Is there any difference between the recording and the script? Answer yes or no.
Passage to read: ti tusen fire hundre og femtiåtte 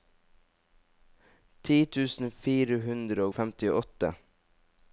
no